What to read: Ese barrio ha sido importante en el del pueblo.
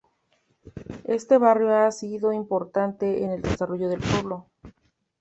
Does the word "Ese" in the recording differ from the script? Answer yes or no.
yes